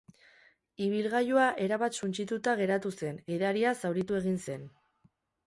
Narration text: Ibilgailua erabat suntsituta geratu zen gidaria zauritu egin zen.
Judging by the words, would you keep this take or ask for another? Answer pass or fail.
pass